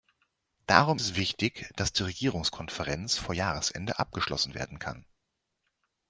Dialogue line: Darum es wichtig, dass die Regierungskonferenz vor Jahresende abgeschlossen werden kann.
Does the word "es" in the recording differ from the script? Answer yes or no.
no